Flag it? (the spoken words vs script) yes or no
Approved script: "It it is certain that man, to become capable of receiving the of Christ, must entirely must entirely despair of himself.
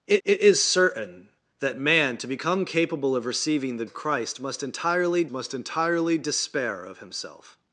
no